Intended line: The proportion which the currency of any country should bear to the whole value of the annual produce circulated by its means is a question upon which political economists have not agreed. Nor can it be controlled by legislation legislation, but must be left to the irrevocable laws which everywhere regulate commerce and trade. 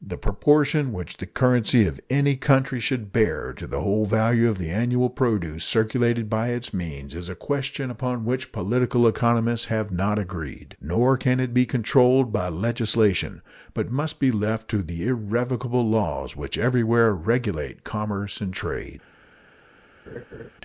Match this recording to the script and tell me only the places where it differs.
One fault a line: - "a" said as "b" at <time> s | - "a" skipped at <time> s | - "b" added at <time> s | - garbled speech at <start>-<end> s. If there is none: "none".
- "legislation" skipped at 13.4 s